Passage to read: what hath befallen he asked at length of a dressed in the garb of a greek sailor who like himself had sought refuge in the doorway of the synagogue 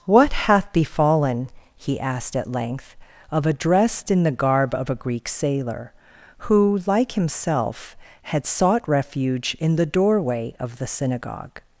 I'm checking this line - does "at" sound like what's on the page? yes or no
yes